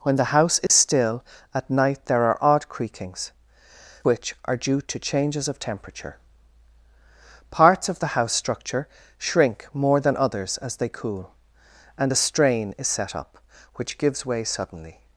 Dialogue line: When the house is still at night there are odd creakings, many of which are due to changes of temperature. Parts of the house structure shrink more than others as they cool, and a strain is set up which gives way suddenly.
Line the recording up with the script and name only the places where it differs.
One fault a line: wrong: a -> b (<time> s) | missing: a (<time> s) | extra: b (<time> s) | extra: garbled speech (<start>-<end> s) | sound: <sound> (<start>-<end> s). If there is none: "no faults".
sound: dropout (0.7-0.7 s)
missing: many of (3.3 s)